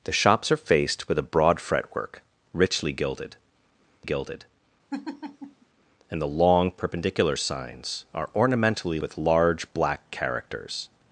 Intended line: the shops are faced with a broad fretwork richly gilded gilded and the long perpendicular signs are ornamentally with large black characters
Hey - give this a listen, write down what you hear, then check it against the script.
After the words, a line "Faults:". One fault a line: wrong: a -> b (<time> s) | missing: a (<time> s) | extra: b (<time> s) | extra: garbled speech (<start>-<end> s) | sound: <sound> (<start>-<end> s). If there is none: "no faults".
the shops are faced with a broad fretwork richly gilded gilded and the long perpendicular signs are ornamentally with large black characters
Faults:
sound: laugh (4.9-5.7 s)